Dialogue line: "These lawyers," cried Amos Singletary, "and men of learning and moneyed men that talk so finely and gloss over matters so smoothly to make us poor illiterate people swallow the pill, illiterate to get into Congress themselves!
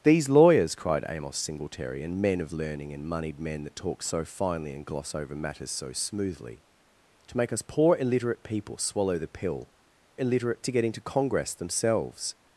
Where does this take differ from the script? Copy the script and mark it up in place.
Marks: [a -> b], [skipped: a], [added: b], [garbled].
"These lawyers," cried Amos Singletary, "and men of learning and moneyed men that talk so finely and gloss over matters so smoothly to make us poor illiterate people swallow the pill, illiterate to get into Congress themselves!